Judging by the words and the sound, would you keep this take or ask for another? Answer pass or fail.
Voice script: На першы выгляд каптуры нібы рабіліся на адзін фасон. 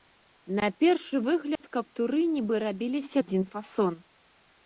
fail